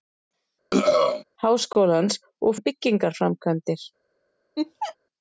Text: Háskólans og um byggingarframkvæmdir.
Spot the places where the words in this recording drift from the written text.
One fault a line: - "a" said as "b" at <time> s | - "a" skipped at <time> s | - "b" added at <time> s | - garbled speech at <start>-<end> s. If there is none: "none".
none